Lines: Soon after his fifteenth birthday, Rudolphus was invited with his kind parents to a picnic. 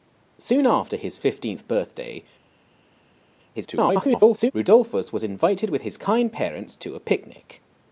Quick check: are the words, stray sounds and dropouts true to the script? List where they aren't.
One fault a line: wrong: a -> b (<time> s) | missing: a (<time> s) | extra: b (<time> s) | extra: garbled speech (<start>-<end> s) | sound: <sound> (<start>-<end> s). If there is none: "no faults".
extra: garbled speech (3.5-4.5 s)